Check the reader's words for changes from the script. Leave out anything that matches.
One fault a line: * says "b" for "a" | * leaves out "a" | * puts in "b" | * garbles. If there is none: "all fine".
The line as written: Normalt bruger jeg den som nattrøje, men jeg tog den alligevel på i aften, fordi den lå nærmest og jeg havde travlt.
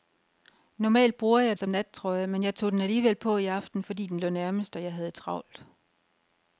* leaves out "den"